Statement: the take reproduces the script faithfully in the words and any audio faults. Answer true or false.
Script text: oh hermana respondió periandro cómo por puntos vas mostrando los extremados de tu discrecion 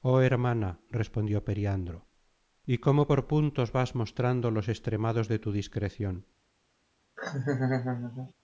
false